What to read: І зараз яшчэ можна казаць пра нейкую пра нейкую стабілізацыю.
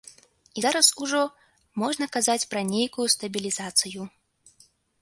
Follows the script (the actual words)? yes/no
no